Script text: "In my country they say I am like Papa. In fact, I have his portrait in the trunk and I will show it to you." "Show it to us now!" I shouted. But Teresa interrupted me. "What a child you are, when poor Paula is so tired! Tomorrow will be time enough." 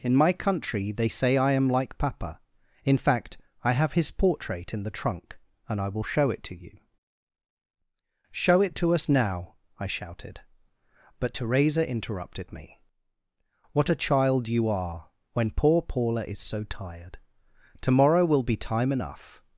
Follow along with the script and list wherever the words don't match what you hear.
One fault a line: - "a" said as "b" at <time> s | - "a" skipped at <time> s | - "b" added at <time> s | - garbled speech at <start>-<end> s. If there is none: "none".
none